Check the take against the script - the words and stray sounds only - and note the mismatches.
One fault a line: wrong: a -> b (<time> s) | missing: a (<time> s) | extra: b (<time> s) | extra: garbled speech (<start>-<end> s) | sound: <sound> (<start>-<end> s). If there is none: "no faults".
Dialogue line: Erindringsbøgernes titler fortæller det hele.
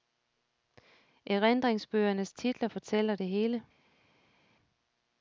no faults